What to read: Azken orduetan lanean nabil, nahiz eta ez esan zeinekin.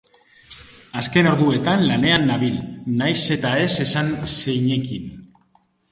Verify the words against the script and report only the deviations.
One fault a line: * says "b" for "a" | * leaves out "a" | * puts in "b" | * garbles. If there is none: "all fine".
all fine